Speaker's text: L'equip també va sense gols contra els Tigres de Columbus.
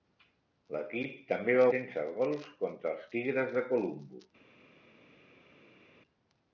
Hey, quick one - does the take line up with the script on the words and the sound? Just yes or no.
yes